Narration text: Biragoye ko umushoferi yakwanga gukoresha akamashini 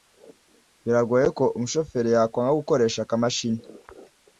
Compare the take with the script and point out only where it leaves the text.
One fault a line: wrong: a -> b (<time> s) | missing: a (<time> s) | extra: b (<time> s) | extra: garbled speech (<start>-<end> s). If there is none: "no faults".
no faults